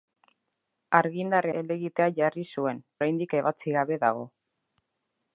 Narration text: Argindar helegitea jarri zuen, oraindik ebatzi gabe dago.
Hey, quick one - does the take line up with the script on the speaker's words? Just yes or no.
yes